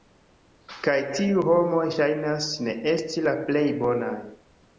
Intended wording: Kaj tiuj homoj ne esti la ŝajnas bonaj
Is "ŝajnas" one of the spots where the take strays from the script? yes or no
yes